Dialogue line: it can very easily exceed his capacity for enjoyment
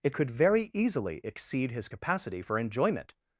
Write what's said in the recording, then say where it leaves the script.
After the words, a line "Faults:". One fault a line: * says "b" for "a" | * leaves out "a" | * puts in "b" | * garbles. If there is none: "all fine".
it could very easily exceed his capacity for enjoyment
Faults:
* says "could" for "can"